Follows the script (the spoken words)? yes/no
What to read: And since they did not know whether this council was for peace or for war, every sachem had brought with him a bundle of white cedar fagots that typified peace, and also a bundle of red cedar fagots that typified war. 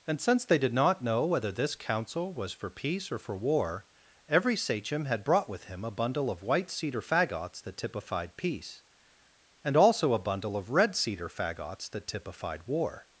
yes